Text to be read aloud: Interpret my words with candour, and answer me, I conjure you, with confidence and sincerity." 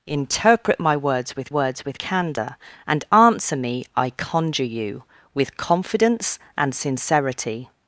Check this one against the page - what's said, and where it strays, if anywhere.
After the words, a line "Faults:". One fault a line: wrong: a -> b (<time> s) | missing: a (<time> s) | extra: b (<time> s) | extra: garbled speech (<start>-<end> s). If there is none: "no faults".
Interpret my words with words with candour, and answer me, I conjure you, with confidence and sincerity."
Faults:
extra: words with (1.5 s)